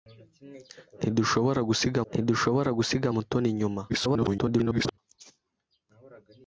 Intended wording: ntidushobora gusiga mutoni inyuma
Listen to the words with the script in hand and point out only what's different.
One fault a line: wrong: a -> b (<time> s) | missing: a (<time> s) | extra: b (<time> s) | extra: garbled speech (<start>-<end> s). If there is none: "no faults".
extra: ntidushobora gusiga (2.1 s)
extra: garbled speech (3.9-5.0 s)